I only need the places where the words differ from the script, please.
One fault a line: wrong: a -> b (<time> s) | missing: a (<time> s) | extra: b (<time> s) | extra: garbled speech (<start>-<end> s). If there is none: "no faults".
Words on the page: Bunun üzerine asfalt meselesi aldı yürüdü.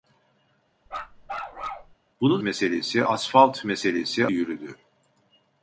wrong: üzerine -> meselesi (2.4 s)
missing: aldı (4.3 s)